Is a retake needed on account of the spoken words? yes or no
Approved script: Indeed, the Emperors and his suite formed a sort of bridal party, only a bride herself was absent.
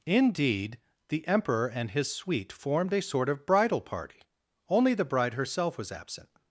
yes